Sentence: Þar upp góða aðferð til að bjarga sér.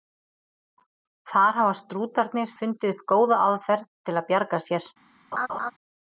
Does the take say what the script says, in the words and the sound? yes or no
no